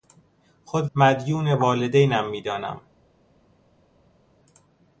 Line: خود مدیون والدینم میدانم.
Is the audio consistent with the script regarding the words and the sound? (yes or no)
yes